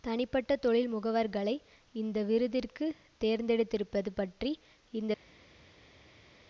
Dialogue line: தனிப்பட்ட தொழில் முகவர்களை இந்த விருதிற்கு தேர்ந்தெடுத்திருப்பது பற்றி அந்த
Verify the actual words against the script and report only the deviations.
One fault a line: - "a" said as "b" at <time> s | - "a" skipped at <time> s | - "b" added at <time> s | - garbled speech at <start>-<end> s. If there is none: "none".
- "அந்த" said as "இந்த" at 4.9 s